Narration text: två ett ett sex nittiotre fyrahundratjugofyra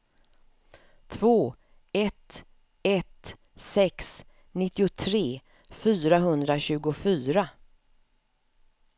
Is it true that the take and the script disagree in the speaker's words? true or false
false